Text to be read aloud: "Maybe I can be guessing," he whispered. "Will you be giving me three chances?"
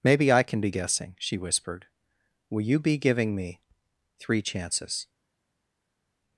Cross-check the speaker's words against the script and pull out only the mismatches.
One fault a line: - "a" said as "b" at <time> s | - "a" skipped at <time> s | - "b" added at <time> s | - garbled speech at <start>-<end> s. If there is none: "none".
- "he" said as "she" at 1.2 s